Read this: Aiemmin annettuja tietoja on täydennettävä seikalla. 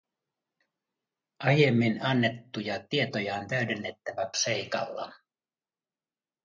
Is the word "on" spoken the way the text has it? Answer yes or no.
yes